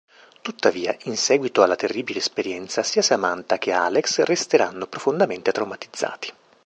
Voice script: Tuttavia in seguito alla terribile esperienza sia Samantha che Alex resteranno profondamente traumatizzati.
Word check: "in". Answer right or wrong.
right